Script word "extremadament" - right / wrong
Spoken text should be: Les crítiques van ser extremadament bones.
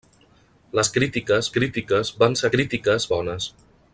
wrong